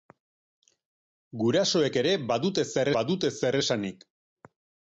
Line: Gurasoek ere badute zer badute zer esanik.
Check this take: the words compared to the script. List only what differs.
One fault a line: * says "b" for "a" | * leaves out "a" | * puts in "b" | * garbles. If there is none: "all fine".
all fine